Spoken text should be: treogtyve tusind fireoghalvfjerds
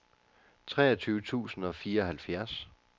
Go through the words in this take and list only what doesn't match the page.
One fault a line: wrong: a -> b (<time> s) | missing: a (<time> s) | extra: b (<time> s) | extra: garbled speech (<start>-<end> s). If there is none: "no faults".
extra: og (1.6 s)